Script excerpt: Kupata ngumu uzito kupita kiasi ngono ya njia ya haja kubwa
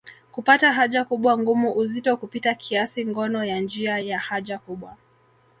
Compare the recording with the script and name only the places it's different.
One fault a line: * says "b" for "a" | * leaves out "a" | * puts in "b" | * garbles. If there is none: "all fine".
* puts in "haja kubwa"